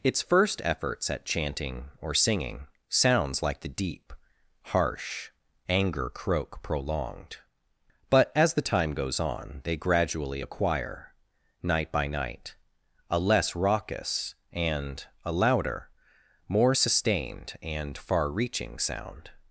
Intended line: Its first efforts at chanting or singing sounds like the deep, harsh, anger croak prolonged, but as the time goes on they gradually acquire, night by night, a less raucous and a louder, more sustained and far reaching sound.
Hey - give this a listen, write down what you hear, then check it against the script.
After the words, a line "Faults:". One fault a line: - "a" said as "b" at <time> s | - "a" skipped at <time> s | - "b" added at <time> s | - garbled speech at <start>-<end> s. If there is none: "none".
Its first efforts at chanting or singing sounds like the deep, harsh, anger croak prolonged, but as the time goes on they gradually acquire, night by night, a less raucous and a louder, more sustained and far reaching sound.
Faults:
none